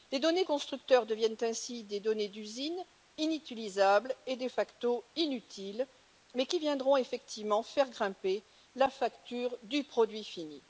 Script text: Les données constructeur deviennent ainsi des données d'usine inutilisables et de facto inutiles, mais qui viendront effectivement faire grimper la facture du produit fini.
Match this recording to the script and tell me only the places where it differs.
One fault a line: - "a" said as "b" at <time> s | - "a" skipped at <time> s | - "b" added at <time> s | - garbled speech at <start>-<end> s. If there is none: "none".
none